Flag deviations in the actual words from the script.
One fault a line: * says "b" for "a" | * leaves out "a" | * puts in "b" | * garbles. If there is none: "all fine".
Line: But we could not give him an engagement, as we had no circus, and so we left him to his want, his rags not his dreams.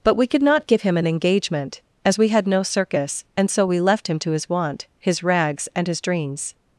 * says "and" for "not"